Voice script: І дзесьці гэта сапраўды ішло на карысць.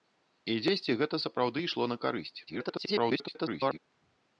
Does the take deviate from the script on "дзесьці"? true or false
false